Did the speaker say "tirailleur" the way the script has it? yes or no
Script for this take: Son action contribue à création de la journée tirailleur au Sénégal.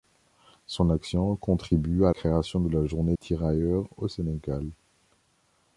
yes